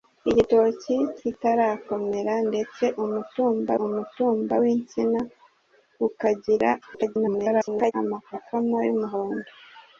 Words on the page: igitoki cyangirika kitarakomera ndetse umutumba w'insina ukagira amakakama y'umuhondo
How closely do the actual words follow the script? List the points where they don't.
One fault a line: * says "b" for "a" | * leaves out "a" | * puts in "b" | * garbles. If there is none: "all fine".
* leaves out "cyangirika"
* puts in "umutumba"
* garbles